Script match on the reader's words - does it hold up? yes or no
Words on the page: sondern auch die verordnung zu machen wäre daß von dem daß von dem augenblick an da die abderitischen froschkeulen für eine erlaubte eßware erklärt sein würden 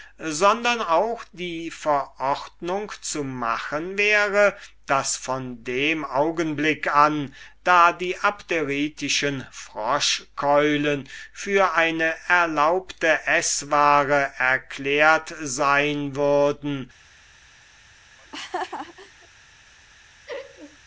no